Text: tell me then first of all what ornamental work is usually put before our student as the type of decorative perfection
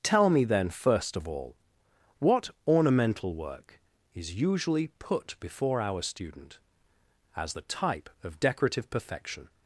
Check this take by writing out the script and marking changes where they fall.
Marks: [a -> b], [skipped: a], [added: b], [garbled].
tell me then first of all what ornamental work is usually put before our student as the type of decorative perfection